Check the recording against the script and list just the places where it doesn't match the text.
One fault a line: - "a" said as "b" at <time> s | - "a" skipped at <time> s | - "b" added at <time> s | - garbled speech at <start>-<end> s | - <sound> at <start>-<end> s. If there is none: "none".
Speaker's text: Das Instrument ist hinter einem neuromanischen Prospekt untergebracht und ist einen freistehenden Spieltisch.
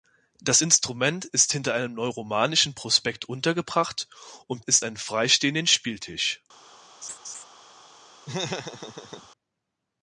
- laugh at 7.0-7.4 s
- laugh at 8.3-9.3 s